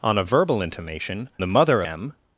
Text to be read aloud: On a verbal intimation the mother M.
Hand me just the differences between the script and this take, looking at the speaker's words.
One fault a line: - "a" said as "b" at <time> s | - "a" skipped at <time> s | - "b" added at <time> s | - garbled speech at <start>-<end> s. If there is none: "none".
none